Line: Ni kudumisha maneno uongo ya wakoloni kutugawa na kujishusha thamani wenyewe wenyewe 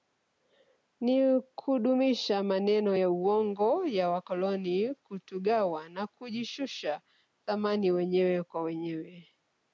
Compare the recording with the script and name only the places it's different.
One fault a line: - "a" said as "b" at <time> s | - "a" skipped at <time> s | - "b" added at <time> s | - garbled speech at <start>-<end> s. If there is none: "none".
- "ya" added at 3.0 s
- "kwa" added at 8.4 s